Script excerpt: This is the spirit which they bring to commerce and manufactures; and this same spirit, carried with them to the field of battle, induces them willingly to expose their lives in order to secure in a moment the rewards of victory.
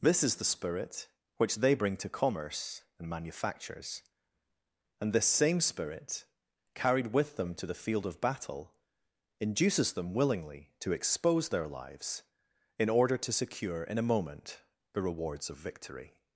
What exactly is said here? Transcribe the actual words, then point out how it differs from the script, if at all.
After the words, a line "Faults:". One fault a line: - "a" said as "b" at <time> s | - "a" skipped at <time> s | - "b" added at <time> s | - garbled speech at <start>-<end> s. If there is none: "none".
This is the spirit which they bring to commerce and manufactures; and this same spirit, carried with them to the field of battle, induces them willingly to expose their lives in order to secure in a moment the rewards of victory.
Faults:
none